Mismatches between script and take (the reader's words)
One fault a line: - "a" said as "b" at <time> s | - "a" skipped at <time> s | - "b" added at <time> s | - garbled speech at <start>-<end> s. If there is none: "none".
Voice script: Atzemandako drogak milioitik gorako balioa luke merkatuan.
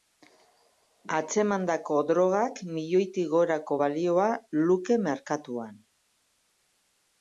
none